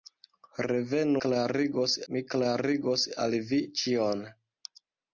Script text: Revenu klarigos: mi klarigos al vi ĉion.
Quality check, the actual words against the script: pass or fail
pass